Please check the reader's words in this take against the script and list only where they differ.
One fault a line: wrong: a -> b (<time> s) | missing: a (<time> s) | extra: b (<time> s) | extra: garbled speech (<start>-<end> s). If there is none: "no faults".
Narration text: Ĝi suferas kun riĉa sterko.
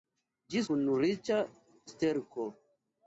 missing: suferas (0.6 s)